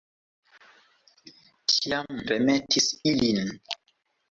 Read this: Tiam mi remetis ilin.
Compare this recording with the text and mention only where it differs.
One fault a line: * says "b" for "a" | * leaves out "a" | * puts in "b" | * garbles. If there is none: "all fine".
* leaves out "mi"